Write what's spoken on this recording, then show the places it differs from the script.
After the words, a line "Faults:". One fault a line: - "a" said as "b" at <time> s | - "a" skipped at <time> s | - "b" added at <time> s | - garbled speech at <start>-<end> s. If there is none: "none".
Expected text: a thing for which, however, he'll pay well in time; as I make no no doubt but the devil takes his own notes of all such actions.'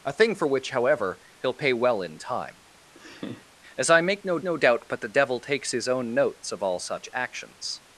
a thing for which, however, he'll pay well in time; as I make no no doubt but the devil takes his own notes of all such actions.'
Faults:
none